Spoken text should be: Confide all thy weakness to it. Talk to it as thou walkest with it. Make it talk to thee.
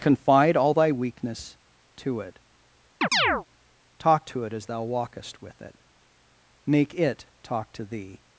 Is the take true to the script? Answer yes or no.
yes